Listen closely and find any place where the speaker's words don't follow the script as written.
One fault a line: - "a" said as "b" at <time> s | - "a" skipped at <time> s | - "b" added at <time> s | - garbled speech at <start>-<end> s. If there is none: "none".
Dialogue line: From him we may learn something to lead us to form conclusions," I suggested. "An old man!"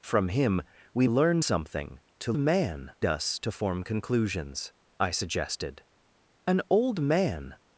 - "may" skipped at 1.1 s
- "lead" said as "man" at 2.4 s